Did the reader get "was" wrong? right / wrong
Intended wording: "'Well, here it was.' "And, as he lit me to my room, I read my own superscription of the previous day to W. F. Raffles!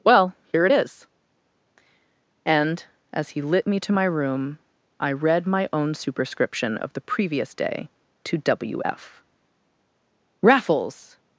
wrong